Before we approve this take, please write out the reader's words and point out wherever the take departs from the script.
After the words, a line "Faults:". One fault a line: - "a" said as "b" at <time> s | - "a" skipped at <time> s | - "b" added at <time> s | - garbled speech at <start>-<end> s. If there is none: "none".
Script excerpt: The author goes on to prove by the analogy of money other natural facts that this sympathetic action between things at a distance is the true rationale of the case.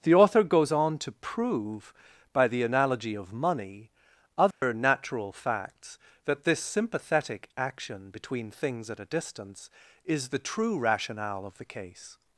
The author goes on to prove by the analogy of money other natural facts that this sympathetic action between things at a distance is the true rationale of the case.
Faults:
none